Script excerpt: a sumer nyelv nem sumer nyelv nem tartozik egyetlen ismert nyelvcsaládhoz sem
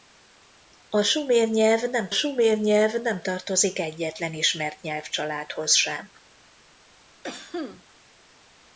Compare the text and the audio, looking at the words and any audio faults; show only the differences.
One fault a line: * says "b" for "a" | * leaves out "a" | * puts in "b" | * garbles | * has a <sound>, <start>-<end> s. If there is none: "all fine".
* has a cough, 7.2-7.8 s